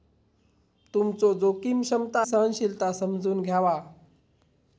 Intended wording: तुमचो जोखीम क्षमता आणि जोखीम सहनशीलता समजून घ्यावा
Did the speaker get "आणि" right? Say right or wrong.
wrong